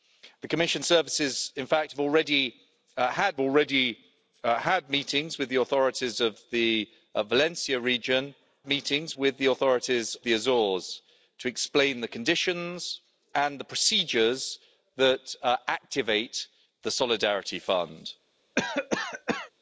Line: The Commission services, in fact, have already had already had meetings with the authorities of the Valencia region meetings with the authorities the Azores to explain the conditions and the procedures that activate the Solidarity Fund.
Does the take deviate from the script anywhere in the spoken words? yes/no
no